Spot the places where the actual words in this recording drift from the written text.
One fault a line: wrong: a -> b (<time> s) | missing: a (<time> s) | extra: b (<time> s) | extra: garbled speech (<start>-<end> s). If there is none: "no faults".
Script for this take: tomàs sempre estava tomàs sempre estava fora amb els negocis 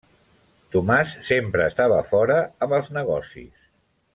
missing: tomàs sempre estava (2.0 s)